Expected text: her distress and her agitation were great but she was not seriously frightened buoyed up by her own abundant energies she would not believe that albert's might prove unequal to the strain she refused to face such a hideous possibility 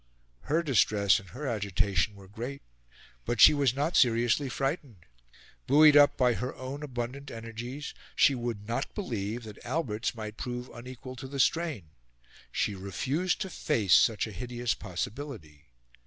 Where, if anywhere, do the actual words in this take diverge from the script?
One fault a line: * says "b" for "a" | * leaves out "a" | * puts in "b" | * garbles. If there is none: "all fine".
all fine